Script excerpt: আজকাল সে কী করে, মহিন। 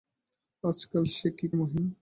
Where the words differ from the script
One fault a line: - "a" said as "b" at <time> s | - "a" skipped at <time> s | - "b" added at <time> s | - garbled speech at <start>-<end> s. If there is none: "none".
- "করে" skipped at 1.5 s